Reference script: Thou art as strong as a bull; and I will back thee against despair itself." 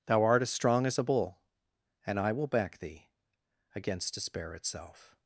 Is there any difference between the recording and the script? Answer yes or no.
no